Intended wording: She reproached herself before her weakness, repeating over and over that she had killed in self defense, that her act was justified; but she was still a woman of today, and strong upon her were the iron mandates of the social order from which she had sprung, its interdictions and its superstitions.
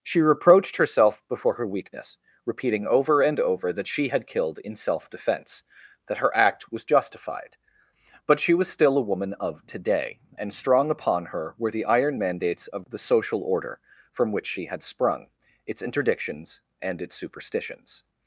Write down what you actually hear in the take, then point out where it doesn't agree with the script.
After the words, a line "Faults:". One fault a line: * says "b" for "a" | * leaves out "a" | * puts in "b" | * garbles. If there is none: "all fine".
She reproached herself before her weakness, repeating over and over that she had killed in self defense, that her act was justified; but she was still a woman of today, and strong upon her were the iron mandates of the social order from which she had sprung, its interdictions and its superstitions.
Faults:
all fine